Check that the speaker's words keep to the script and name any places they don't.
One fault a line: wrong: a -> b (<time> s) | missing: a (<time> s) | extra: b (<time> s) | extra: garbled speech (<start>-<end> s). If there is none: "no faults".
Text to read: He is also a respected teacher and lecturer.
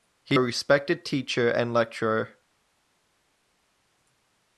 missing: is also (0.4 s)